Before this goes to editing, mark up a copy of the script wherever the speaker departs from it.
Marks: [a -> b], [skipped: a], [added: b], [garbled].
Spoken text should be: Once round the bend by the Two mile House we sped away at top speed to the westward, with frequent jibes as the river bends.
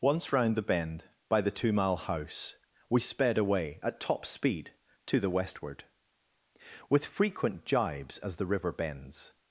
Once round the bend by the Two mile House we sped away at top speed to the westward, with frequent jibes as the river bends.